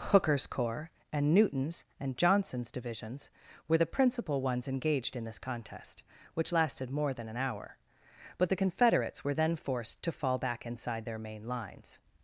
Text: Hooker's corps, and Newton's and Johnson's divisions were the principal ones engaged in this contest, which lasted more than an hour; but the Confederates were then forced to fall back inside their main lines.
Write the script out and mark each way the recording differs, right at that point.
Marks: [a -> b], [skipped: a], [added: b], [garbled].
Hooker's corps, and Newton's and Johnson's divisions were the principal ones engaged in this contest, which lasted more than an hour; but the Confederates were then forced to fall back inside their main lines.